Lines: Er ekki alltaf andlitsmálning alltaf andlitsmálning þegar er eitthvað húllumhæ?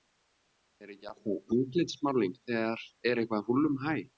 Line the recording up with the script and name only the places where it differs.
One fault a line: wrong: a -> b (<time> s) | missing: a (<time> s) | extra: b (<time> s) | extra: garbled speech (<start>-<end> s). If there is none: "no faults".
missing: alltaf andlitsmálning (2.4 s)